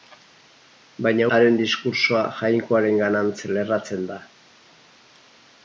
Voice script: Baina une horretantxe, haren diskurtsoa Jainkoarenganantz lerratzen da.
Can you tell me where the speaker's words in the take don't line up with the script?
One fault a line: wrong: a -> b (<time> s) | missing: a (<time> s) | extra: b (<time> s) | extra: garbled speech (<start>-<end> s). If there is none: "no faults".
missing: une horretantxe (1.3 s)